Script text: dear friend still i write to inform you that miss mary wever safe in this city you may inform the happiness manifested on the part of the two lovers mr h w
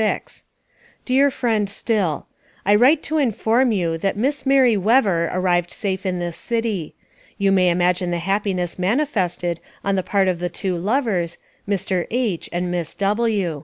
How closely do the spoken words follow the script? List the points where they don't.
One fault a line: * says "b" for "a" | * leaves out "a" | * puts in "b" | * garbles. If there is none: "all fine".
* puts in "arrived"
* says "imagine" for "inform"
* puts in "and miss"